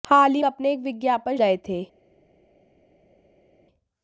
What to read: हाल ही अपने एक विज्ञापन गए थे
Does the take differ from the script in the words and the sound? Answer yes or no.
no